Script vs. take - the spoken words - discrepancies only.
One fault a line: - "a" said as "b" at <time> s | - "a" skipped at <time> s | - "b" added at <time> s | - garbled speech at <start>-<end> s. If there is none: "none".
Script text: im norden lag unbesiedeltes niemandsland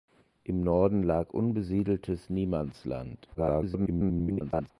- garbled speech at 3.3-4.7 s